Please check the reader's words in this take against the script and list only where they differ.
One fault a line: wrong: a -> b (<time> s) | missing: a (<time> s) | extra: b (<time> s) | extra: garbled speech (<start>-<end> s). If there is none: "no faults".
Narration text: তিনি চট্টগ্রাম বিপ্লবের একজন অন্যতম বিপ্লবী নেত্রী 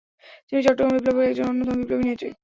no faults